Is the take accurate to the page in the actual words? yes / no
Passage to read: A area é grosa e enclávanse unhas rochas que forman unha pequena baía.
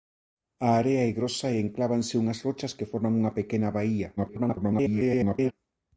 no